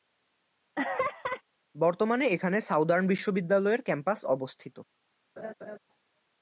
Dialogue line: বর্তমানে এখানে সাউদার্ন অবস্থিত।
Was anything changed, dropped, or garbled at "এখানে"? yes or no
no